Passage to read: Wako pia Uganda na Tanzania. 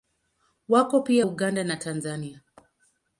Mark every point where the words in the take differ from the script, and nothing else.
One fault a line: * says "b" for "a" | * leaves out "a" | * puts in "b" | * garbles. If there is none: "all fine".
all fine